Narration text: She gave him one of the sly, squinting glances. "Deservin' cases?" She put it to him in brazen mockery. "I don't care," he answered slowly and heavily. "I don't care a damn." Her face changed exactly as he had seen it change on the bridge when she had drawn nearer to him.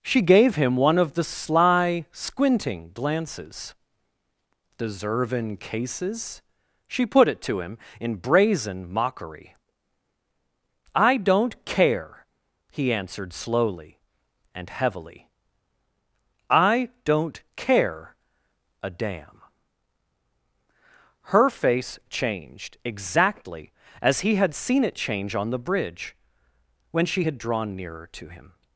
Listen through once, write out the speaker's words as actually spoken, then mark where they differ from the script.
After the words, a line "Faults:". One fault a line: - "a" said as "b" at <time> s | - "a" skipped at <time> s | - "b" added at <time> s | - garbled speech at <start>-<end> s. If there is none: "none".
She gave him one of the sly, squinting glances. "Deservin' cases?" She put it to him in brazen mockery. "I don't care," he answered slowly and heavily. "I don't care a damn." Her face changed exactly as he had seen it change on the bridge when she had drawn nearer to him.
Faults:
none